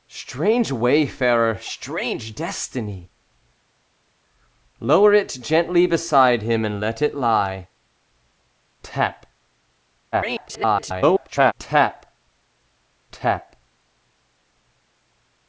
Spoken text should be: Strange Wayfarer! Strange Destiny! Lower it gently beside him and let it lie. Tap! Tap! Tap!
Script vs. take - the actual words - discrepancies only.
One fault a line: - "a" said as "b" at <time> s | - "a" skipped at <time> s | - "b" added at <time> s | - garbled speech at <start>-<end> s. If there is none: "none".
- garbled speech at 10.1-11.5 s